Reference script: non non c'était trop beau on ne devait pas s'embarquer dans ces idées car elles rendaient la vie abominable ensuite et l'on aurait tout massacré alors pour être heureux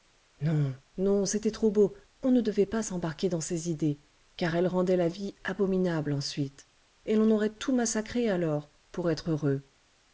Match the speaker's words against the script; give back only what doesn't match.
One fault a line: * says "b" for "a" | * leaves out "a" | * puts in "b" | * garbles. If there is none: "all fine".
all fine